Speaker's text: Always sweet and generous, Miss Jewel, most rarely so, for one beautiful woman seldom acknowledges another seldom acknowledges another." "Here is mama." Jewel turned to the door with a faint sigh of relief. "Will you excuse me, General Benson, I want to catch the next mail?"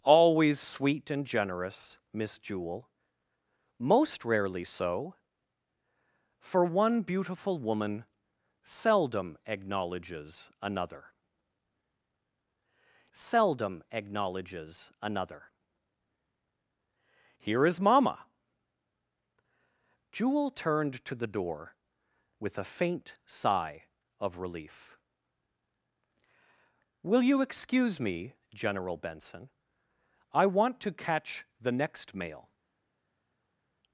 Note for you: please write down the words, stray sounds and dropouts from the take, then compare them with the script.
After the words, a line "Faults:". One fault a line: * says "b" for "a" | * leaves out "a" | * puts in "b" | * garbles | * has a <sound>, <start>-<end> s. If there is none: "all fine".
Always sweet and generous, Miss Jewel, most rarely so, for one beautiful woman seldom acknowledges another seldom acknowledges another." "Here is mama." Jewel turned to the door with a faint sigh of relief. "Will you excuse me, General Benson, I want to catch the next mail?"
Faults:
all fine